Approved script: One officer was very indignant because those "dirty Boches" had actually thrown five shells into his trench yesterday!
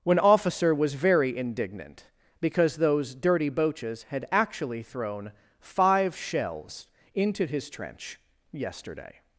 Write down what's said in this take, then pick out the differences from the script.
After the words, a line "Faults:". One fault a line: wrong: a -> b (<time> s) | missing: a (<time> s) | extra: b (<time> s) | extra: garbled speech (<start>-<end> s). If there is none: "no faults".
When officer was very indignant because those "dirty Boches" had actually thrown five shells into his trench yesterday!
Faults:
wrong: One -> When (0.0 s)